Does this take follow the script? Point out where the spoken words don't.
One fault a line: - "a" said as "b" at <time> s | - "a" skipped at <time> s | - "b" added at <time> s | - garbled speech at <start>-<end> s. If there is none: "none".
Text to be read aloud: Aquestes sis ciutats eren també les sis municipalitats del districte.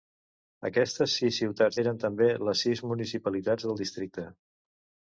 none